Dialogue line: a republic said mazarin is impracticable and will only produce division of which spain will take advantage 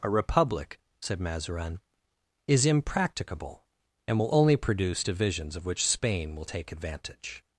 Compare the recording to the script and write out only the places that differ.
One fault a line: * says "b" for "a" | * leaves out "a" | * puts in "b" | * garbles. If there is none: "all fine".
* says "divisions" for "division"